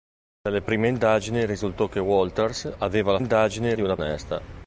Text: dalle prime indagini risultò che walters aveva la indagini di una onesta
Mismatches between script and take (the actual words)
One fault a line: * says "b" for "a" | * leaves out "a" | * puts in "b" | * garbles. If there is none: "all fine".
all fine